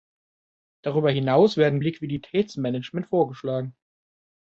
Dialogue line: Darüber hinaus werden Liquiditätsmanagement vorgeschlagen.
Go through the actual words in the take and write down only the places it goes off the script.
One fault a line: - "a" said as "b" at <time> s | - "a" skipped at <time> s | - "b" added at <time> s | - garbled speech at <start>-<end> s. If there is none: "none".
none